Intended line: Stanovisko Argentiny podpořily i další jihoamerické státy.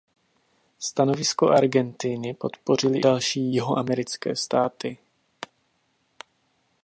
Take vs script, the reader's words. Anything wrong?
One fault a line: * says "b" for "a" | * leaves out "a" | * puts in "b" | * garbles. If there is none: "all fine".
* leaves out "i"